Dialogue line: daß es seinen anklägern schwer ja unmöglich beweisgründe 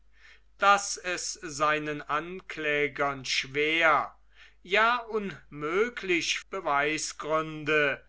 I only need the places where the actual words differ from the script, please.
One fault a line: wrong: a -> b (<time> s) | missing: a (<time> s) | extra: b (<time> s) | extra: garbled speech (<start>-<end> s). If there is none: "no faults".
no faults